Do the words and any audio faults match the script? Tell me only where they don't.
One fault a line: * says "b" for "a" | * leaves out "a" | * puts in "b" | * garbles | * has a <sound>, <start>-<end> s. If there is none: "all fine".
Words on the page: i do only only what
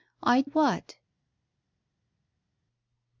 * leaves out "do only only"